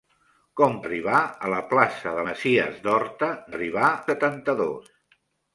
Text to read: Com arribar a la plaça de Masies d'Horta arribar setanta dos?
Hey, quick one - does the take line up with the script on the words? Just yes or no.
yes